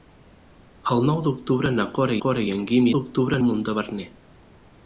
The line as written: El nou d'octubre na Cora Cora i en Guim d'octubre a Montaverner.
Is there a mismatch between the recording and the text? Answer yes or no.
no